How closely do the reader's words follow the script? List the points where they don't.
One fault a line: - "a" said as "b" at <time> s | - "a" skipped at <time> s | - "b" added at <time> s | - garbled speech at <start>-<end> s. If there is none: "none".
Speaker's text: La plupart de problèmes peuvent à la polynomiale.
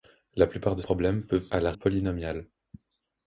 none